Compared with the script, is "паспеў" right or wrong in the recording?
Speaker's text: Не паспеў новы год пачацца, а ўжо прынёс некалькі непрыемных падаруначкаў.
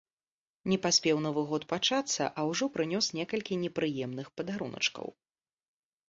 right